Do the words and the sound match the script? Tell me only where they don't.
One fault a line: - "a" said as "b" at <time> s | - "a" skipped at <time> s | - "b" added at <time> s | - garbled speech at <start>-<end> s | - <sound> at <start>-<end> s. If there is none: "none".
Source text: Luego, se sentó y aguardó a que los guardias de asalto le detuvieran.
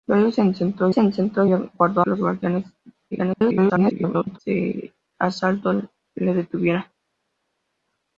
- "se sentó" added at 0.9 s
- "a" skipped at 2.0 s
- garbled speech at 3.1-4.4 s